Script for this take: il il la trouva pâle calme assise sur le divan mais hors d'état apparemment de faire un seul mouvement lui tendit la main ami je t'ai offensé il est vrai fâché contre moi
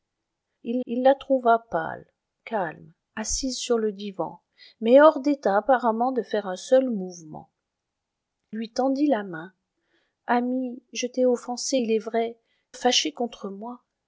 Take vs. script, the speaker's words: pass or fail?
pass